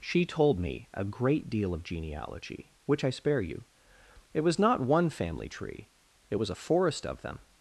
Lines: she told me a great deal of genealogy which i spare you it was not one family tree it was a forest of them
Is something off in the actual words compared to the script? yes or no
no